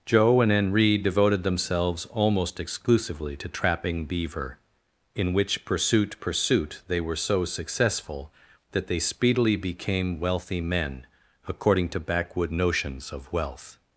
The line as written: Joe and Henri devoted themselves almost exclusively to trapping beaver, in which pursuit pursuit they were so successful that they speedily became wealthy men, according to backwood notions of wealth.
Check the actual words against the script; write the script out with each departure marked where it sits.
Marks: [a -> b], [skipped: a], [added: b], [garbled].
Joe and Henri devoted themselves almost exclusively to trapping beaver, in which pursuit pursuit they were so successful that they speedily became wealthy men, according to backwood notions of wealth.